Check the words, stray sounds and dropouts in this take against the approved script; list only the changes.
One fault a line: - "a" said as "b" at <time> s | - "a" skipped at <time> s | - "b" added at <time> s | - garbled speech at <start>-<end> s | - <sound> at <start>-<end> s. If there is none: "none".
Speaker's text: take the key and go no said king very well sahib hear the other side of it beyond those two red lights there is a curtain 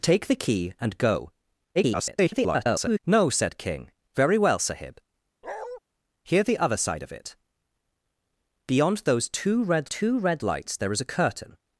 - garbled speech at 1.7-3.0 s
- bark at 5.4-5.8 s
- "two red" added at 9.8 s